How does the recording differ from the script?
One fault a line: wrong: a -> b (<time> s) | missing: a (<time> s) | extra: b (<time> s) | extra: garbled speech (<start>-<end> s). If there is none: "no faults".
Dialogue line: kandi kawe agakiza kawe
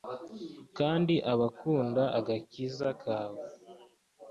wrong: kawe -> abakunda (1.3 s)